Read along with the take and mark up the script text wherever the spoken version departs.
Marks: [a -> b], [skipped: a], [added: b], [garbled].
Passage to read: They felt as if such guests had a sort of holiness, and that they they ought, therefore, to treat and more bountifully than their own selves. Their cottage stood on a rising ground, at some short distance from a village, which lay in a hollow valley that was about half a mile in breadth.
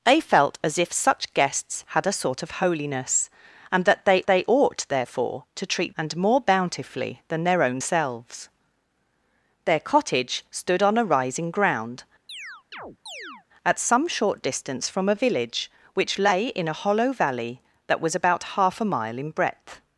They felt as if such guests had a sort of holiness, and that they they ought, therefore, to treat and more bountifully than their own selves. Their cottage stood on a rising ground, at some short distance from a village, which lay in a hollow valley that was about half a mile in breadth.